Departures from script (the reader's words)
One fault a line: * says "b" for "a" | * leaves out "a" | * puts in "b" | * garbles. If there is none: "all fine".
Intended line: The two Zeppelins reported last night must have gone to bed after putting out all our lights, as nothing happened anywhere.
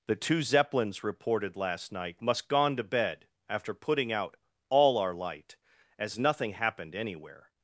* leaves out "have"
* says "light" for "lights"